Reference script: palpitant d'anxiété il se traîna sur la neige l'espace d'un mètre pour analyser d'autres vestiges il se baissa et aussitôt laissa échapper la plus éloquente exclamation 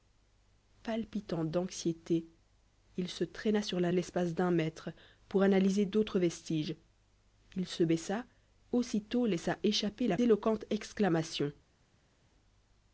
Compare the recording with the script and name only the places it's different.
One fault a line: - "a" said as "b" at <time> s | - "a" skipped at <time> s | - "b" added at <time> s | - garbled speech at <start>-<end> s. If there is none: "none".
- "neige" skipped at 3.9 s
- "et" skipped at 8.2 s
- "plus" skipped at 10.2 s